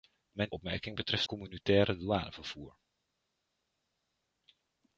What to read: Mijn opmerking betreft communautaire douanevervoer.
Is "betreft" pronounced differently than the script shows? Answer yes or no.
no